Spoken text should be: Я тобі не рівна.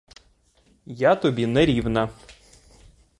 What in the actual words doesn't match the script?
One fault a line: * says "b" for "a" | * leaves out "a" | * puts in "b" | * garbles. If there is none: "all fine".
all fine